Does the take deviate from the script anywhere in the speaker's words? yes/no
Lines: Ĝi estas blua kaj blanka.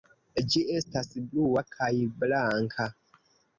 no